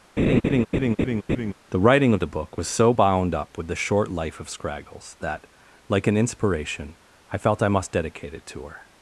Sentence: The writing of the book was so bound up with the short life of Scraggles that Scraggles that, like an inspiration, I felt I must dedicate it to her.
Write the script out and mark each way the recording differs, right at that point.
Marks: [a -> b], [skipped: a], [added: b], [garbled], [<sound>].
[laugh] The writing of the book was so bound up with the short life of Scraggles that [skipped: Scraggles that,] like an inspiration, I felt I must dedicate it to her.